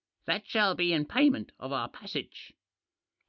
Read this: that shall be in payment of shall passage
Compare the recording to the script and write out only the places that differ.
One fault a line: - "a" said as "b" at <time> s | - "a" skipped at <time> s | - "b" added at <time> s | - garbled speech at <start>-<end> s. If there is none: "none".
- "shall" said as "our" at 1.7 s